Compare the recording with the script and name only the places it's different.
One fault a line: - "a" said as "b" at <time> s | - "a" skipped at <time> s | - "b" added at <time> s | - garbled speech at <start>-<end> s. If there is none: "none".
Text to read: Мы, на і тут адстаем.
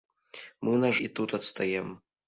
none